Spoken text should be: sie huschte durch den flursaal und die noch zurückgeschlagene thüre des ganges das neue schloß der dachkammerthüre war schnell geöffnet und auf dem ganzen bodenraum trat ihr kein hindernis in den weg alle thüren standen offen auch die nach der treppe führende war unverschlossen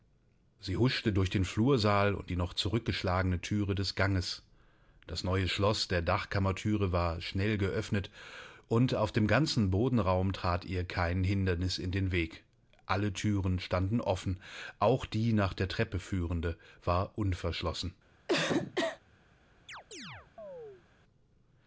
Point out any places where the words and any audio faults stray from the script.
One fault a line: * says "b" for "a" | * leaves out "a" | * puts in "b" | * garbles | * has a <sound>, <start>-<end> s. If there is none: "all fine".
* has a cough, 18.3-19.0 s
* has a chirp, 19.7-20.8 s